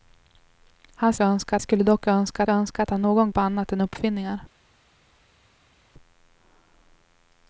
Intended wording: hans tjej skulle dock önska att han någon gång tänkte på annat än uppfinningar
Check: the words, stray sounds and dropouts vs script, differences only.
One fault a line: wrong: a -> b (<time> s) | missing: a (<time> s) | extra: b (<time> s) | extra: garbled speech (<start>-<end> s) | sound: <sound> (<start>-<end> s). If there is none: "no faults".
wrong: tjej -> önska (1.2 s)
extra: önska (2.5 s)
missing: gång tänkte (3.3 s)